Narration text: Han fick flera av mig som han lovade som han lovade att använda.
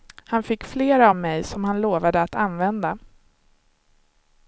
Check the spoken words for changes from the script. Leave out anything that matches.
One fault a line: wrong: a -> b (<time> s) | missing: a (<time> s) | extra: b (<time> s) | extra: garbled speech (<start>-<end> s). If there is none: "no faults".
missing: som han lovade (2.2 s)